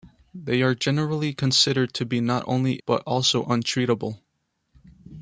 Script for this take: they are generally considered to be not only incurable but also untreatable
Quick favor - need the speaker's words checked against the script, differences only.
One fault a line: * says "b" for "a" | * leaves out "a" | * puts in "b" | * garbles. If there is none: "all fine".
* leaves out "incurable"